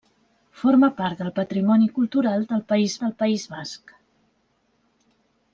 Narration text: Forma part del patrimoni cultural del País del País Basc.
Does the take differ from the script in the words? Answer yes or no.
no